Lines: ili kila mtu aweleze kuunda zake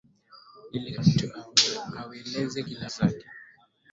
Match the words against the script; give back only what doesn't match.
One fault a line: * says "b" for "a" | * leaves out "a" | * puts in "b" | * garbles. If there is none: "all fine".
* leaves out "kila"
* says "kila" for "kuunda"